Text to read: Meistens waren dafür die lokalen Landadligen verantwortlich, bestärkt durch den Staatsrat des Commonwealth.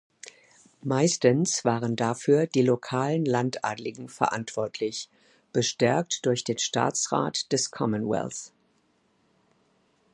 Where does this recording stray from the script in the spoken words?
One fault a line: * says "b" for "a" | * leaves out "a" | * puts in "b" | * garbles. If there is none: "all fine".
all fine